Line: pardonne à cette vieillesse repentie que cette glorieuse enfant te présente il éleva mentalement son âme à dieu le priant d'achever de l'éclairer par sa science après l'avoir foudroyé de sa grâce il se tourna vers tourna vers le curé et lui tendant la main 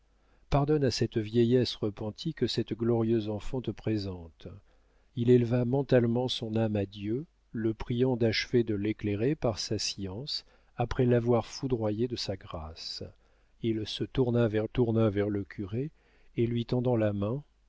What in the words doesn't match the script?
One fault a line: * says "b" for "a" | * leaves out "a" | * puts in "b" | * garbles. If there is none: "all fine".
all fine